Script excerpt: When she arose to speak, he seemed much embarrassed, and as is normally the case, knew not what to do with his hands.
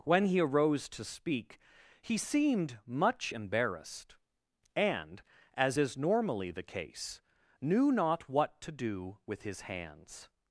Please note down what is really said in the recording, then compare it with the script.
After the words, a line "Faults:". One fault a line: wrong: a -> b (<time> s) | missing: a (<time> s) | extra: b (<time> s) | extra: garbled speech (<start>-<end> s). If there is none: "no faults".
When he arose to speak, he seemed much embarrassed, and as is normally the case, knew not what to do with his hands.
Faults:
wrong: she -> he (0.2 s)